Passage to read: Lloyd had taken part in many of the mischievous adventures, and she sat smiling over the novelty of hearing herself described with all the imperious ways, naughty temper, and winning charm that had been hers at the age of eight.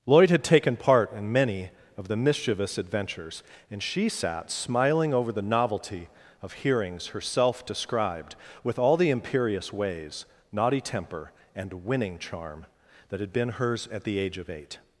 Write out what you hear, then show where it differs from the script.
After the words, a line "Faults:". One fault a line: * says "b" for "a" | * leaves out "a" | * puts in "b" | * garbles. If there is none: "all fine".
Lloyd had taken part in many of the mischievous adventures, and she sat smiling over the novelty of hearings herself described with all the imperious ways, naughty temper, and winning charm that had been hers at the age of eight.
Faults:
* says "hearings" for "hearing"